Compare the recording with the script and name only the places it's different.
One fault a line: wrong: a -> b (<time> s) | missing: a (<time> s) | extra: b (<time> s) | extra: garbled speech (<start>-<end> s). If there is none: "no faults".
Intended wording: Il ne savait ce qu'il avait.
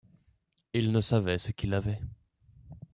no faults